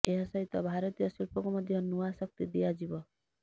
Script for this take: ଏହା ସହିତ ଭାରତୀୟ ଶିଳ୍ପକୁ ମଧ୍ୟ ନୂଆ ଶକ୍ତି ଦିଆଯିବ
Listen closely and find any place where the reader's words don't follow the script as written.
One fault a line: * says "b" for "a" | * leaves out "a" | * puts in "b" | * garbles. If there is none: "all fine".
all fine